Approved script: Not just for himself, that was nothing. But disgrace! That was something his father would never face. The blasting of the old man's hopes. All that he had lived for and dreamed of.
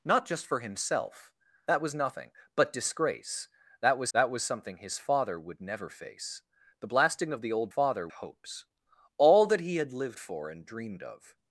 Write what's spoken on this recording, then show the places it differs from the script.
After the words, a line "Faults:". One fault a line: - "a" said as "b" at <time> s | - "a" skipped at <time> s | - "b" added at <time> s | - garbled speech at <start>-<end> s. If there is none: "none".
Not just for himself, that was nothing. But disgrace! That was that was something his father would never face. The blasting of the old father hopes. All that he had lived for and dreamed of.
Faults:
- "that was" added at 4.1 s
- "man's" said as "father" at 7.7 s